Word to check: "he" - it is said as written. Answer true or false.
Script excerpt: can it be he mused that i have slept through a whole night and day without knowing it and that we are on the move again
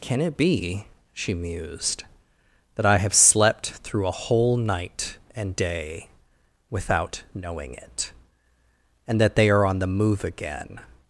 false